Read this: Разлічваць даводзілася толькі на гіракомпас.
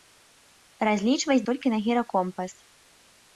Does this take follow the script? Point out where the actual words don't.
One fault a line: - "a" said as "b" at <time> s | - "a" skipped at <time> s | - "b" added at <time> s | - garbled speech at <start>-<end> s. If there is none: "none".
- "даводзілася" skipped at 1.4 s